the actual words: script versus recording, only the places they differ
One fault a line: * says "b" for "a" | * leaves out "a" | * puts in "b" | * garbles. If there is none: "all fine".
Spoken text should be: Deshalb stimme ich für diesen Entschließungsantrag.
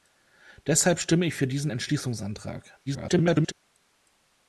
* garbles